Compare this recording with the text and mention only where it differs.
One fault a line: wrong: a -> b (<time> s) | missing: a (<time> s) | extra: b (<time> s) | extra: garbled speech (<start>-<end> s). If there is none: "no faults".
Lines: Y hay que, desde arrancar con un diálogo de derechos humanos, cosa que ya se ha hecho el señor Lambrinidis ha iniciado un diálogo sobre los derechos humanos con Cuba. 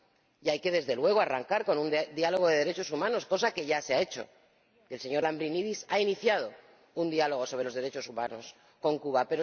extra: luego (0.9 s)